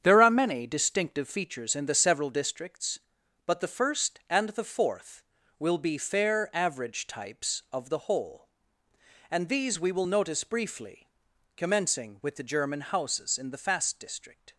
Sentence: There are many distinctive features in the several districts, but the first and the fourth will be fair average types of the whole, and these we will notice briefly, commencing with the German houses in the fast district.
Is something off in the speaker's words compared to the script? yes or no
no